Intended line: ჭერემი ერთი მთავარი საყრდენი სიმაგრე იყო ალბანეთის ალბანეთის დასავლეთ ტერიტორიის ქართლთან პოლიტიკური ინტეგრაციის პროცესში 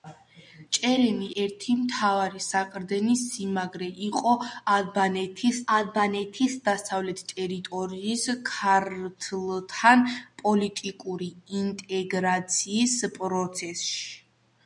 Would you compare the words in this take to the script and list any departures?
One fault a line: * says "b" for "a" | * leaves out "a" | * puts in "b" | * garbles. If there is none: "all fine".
all fine